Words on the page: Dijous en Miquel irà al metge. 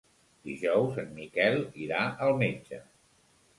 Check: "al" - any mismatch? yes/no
no